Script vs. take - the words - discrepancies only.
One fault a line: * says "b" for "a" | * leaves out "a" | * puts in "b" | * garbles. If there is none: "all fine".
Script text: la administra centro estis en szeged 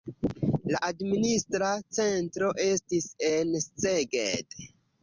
all fine